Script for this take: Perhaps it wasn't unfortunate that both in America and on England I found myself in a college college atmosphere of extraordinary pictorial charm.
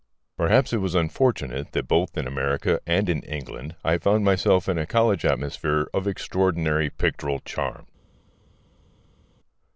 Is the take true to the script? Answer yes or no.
no